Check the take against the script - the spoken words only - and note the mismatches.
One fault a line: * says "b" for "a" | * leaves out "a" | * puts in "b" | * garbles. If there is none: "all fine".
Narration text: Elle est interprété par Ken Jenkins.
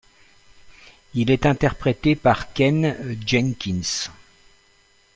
* says "Il" for "Elle"